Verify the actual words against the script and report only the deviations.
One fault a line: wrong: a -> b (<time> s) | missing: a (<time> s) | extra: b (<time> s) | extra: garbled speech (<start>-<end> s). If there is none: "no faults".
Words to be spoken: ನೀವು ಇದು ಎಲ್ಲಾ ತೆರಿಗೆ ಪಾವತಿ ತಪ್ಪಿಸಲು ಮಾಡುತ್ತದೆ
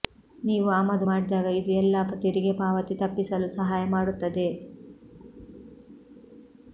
extra: ಆಮದು ಮಾಡಿದಾಗ (0.7 s)
extra: ಸಹಾಯ (3.5 s)